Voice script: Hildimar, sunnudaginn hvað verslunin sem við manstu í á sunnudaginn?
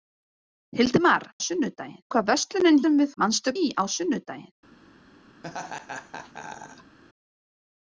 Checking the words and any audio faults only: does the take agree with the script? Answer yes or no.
no